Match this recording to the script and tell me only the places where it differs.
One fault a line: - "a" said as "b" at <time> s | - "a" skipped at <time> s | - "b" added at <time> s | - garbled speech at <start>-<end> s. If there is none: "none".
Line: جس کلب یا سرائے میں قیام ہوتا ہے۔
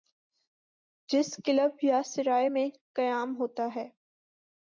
none